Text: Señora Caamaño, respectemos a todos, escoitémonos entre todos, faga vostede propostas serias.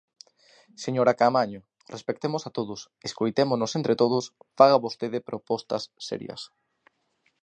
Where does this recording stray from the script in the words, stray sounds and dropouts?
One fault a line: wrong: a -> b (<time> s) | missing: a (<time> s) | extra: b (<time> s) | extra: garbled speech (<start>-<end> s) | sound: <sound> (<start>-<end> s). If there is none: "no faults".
no faults